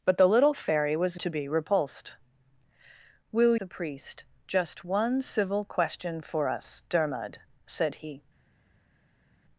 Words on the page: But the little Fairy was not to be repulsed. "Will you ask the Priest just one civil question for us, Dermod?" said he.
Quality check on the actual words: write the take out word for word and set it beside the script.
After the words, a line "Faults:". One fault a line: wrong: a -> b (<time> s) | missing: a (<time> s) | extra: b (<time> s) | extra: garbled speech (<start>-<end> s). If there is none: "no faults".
But the little Fairy was to be repulsed. "Will the Priest just one civil question for us, Dermod?" said he.
Faults:
missing: not (1.2 s)
missing: you ask (3.5 s)